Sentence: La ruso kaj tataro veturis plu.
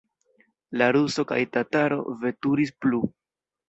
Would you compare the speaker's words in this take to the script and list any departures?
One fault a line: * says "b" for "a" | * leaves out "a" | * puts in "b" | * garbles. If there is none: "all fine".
all fine